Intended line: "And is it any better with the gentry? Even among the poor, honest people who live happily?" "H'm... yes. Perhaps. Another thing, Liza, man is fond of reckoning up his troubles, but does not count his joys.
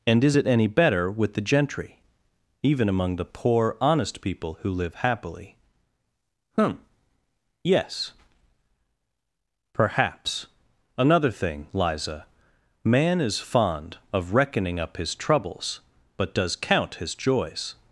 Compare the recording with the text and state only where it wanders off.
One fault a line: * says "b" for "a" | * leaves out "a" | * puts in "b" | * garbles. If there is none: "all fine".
* leaves out "not"